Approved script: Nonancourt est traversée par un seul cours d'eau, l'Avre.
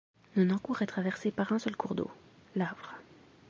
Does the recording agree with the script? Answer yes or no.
yes